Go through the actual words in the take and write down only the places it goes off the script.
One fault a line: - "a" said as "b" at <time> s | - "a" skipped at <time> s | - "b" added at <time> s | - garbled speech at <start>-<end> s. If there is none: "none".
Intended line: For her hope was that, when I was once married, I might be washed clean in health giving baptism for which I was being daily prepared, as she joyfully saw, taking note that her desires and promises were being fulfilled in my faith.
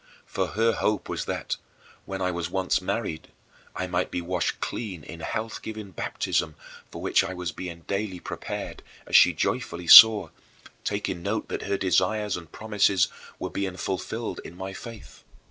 none